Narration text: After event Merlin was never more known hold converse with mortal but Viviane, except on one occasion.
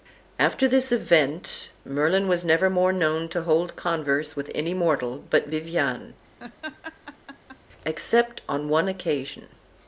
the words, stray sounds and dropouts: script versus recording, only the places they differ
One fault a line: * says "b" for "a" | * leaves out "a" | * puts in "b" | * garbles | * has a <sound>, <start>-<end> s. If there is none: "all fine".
* puts in "this"
* puts in "to"
* puts in "any"
* has a laugh, 6.4-7.6 s